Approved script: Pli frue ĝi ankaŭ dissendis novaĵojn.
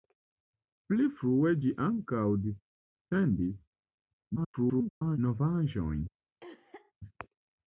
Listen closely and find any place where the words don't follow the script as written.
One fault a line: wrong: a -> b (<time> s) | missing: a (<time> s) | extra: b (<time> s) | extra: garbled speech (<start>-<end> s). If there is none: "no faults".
extra: garbled speech (4.4-5.2 s)